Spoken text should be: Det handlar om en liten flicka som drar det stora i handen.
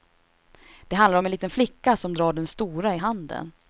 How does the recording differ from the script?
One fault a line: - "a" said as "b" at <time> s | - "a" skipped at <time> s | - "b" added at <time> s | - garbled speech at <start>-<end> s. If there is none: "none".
- "det" said as "den" at 2.3 s